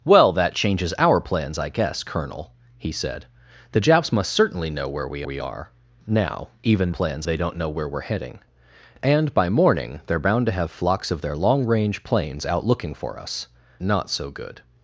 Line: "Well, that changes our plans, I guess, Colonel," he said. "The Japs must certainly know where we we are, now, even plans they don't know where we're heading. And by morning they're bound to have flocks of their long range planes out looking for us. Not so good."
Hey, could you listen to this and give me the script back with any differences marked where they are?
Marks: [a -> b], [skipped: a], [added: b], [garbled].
"Well, that changes our plans, I guess, Colonel," he said. "The Japs must certainly know where we we are, now, even plans they don't know where we're heading. And by morning they're bound to have flocks of their long range planes out looking for us. Not so good."